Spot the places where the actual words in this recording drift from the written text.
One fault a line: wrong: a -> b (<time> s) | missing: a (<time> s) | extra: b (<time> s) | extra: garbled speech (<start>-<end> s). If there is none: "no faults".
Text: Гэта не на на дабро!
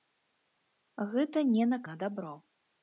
no faults